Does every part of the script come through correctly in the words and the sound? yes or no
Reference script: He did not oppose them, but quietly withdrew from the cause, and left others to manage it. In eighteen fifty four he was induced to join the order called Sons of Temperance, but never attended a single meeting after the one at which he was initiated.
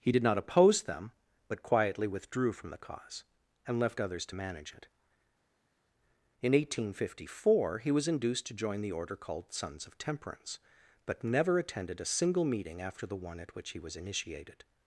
yes